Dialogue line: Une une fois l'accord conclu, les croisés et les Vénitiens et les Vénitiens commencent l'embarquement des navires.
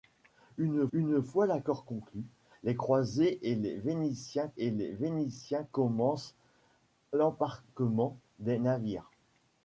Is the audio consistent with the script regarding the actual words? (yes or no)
yes